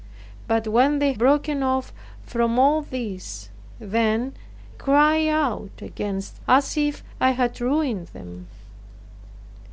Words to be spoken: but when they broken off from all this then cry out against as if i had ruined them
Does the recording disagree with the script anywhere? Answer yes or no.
no